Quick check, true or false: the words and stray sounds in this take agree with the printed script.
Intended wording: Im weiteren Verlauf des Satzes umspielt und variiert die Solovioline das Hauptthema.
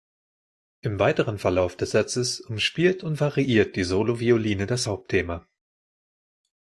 true